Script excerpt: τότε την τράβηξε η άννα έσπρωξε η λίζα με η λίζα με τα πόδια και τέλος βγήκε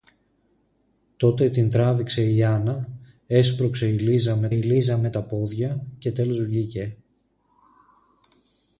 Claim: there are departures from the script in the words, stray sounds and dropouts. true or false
false